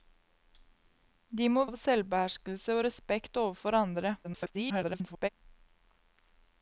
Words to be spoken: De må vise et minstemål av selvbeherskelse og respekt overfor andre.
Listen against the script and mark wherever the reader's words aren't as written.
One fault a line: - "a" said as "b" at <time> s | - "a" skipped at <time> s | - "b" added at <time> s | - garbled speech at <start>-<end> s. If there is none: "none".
- "vise et minstemål" skipped at 1.6 s
- garbled speech at 4.2-5.3 s